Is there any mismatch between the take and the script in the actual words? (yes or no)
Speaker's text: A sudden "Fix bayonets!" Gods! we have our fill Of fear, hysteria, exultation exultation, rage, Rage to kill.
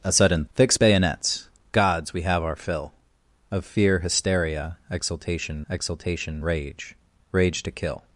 no